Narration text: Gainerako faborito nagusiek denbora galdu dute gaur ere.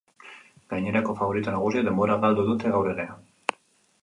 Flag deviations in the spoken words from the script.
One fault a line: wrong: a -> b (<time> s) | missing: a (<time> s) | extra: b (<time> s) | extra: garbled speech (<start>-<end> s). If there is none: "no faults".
no faults